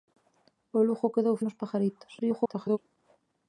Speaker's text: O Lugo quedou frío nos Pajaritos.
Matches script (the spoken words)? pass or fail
fail